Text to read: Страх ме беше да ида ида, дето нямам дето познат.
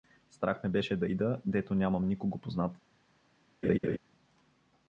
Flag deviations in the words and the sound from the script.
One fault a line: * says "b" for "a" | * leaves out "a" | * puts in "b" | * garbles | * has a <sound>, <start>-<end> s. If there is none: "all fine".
* leaves out "ида"
* says "никого" for "дето"
* has a laugh, 3.6-4.0 s